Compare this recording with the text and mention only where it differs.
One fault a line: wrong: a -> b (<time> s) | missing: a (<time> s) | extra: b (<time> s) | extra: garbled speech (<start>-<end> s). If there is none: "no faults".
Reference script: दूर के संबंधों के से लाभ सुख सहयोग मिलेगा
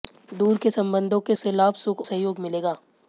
no faults